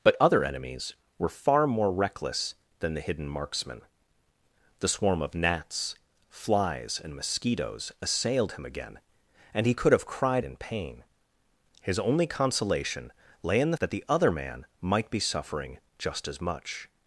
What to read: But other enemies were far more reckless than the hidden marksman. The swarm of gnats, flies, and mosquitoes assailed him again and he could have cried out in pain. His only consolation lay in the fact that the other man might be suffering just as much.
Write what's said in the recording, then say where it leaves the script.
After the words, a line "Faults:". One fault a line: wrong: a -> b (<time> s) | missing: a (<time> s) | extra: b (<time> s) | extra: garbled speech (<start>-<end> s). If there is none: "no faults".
But other enemies were far more reckless than the hidden marksman. The swarm of gnats, flies, and mosquitoes assailed him again and he could have cried in pain. His only consolation lay in the that the other man might be suffering just as much.
Faults:
missing: out (10.5 s)
missing: fact (13.8 s)